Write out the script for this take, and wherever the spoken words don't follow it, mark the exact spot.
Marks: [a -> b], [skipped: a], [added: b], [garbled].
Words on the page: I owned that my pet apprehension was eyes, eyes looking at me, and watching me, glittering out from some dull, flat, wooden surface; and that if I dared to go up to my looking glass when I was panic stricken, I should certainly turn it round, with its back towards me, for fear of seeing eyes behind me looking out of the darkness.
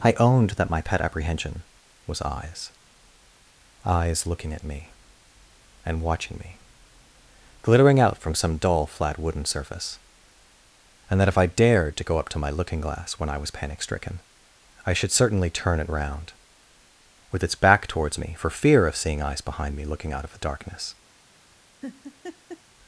I owned that my pet apprehension was eyes, eyes looking at me, and watching me, glittering out from some dull, flat, wooden surface; and that if I dared to go up to my looking glass when I was panic stricken, I should certainly turn it round, with its back towards me, for fear of seeing eyes behind me looking out of the darkness.